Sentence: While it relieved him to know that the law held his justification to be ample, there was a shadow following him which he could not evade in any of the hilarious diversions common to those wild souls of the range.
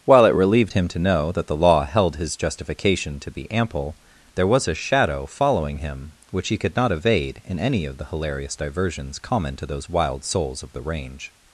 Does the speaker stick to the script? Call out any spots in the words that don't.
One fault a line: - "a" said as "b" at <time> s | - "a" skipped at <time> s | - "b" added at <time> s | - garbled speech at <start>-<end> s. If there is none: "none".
none